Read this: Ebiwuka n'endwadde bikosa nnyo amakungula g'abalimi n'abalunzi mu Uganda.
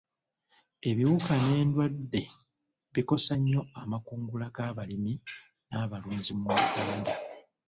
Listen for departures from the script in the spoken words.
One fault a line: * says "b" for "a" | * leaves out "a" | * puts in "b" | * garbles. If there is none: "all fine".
all fine